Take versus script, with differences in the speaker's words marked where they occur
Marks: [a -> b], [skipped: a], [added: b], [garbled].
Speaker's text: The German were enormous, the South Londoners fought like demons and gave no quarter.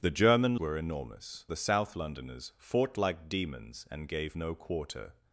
The German were enormous, the South Londoners fought like demons and gave no quarter.